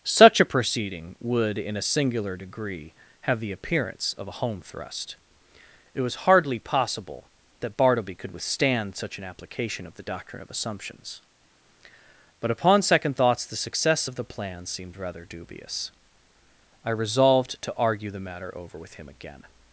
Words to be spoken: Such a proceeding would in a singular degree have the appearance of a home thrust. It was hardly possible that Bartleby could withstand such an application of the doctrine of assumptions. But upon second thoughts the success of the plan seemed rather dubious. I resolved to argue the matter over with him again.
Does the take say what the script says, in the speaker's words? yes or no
yes